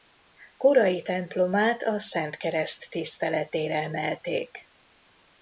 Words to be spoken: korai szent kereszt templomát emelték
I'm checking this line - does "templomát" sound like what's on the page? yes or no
no